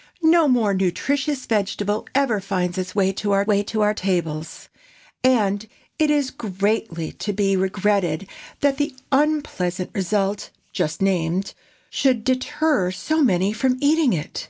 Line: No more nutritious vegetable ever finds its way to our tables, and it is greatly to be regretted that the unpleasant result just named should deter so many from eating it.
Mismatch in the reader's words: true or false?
true